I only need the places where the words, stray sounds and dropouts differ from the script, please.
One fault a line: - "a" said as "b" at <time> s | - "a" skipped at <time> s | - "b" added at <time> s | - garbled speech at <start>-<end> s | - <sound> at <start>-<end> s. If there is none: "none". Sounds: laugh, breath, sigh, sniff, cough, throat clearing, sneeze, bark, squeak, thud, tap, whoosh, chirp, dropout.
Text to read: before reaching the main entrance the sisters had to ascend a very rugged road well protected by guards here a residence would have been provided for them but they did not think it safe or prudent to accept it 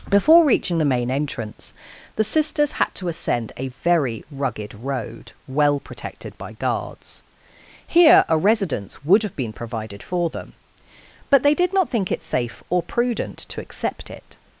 none